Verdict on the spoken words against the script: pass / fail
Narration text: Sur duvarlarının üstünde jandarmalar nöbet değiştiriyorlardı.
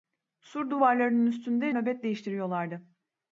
fail